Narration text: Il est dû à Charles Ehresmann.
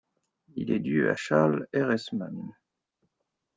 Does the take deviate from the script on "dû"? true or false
false